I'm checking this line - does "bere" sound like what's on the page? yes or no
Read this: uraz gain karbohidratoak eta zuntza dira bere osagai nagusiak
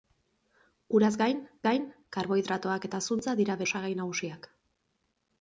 no